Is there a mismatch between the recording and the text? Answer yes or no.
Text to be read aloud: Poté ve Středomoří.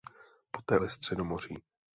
no